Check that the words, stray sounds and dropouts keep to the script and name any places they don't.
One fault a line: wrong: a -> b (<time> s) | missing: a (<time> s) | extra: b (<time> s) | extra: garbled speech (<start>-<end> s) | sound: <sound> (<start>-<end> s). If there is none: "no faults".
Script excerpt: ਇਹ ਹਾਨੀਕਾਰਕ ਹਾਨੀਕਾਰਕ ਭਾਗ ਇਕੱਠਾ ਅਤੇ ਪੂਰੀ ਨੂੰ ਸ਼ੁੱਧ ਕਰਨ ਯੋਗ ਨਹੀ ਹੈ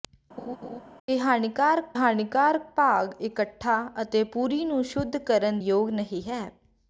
sound: laugh (0.4-0.8 s)